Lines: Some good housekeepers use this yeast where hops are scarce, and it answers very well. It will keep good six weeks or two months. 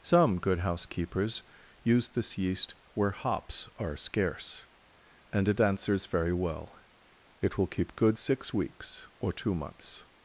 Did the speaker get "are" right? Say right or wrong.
right